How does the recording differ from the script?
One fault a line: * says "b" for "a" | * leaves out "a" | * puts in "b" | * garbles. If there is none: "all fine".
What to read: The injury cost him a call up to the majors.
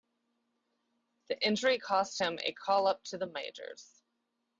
all fine